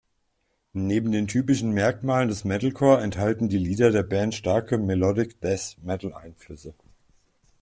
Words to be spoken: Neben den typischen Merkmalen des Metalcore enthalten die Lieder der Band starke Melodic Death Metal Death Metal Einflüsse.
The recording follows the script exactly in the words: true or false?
false